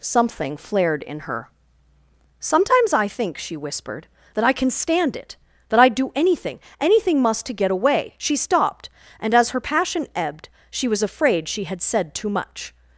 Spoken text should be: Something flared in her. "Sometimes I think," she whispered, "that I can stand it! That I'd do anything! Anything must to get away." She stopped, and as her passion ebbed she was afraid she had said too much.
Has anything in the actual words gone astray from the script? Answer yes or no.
no